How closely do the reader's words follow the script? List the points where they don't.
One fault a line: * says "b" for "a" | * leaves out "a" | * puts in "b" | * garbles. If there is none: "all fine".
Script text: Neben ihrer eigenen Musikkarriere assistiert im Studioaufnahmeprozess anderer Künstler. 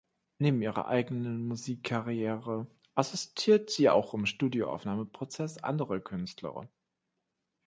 * puts in "sie auch"